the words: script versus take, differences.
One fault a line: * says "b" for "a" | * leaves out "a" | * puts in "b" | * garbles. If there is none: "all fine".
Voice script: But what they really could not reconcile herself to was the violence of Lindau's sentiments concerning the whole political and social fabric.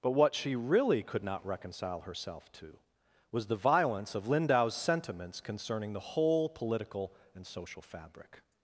* says "she" for "they"